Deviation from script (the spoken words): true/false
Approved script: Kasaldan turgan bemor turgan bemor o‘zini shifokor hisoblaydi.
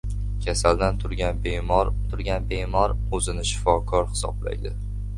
false